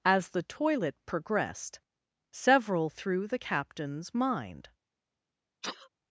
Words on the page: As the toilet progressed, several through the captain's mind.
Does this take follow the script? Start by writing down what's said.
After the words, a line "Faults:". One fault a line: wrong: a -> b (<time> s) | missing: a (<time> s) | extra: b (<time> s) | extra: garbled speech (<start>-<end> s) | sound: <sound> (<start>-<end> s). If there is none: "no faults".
As the toilet progressed, several through the captain's mind.
Faults:
sound: sneeze (5.6-5.9 s)